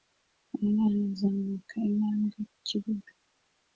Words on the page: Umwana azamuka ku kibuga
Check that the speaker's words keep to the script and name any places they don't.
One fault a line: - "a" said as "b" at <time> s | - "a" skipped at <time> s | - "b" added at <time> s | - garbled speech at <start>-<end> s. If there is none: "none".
- "intambwe" added at 1.9 s